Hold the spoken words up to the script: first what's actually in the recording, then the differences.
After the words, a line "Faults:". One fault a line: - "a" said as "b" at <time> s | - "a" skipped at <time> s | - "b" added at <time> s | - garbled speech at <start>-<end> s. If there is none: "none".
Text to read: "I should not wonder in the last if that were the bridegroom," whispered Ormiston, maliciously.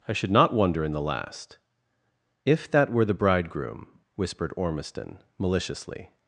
"I should not wonder in the last if that were the bridegroom," whispered Ormiston, maliciously.
Faults:
none